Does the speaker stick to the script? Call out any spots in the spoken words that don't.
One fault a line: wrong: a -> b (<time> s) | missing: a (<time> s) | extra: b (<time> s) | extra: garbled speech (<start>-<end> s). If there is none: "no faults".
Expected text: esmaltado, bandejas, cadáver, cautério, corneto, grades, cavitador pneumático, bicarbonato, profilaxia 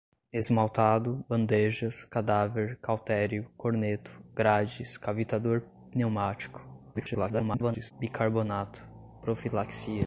extra: garbled speech (6.9-7.9 s)